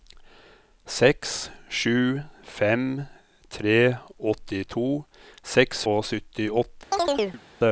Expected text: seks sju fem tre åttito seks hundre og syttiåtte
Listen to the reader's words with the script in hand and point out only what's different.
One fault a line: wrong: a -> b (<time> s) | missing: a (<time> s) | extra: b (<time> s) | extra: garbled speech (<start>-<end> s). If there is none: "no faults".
missing: hundre (5.8 s)